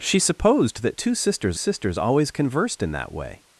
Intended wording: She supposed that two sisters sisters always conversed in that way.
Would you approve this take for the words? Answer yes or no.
yes